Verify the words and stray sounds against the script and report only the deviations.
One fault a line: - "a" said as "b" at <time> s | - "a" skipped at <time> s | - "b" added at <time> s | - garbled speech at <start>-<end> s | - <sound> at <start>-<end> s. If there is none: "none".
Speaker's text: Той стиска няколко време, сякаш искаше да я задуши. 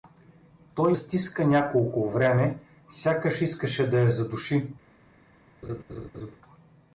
- laugh at 5.6-6.4 s